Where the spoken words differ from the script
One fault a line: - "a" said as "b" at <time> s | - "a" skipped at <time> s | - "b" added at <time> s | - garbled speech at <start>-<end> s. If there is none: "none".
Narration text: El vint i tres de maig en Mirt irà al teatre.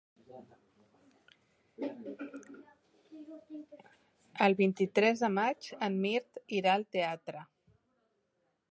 none